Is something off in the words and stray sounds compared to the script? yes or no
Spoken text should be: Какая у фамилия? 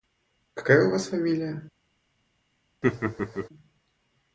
yes